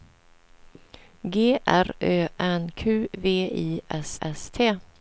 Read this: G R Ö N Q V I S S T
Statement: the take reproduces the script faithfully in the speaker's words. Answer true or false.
true